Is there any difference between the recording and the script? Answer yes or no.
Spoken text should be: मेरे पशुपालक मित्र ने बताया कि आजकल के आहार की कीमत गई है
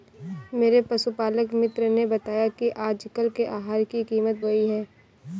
no